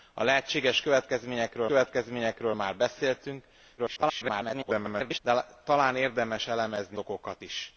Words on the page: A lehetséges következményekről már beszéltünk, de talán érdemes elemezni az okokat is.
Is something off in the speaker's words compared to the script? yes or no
yes